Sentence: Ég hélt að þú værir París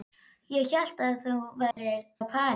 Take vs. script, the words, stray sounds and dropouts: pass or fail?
fail